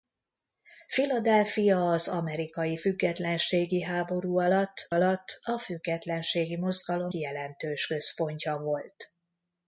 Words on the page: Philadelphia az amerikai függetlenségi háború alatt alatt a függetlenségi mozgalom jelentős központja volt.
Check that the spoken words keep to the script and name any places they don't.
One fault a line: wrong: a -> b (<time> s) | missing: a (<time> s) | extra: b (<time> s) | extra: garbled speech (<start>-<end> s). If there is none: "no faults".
no faults